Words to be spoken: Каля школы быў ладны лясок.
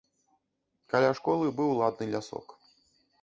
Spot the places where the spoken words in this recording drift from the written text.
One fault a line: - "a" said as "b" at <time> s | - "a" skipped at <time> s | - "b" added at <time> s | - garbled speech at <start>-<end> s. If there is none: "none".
none